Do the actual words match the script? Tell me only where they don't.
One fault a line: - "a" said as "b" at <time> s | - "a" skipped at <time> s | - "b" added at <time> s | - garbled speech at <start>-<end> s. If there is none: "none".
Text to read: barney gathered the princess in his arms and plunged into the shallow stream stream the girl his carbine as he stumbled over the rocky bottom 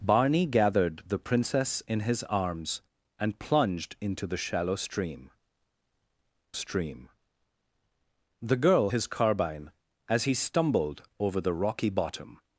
none